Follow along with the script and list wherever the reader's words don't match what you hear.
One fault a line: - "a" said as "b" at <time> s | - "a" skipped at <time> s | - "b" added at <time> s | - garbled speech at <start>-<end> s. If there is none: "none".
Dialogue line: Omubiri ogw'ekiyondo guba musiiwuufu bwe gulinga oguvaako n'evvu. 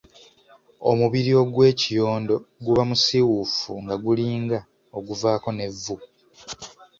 - "bwe" said as "nga" at 3.8 s